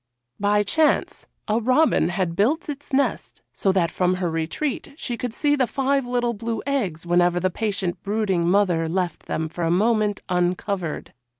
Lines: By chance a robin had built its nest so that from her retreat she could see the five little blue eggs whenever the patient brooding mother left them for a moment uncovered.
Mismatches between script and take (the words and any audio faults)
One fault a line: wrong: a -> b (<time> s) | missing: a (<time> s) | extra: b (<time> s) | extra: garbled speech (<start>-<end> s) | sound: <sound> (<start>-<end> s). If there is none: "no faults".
no faults